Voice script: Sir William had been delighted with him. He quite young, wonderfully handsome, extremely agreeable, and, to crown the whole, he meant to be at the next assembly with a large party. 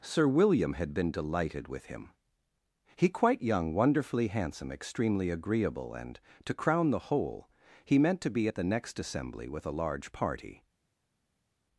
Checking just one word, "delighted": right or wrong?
right